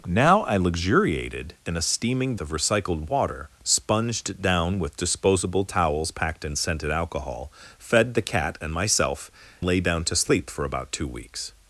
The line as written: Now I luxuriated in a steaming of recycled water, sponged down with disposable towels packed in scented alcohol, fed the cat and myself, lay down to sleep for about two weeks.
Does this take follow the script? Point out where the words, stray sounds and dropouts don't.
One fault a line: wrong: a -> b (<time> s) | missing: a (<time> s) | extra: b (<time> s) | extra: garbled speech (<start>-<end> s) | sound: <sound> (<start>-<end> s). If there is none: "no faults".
no faults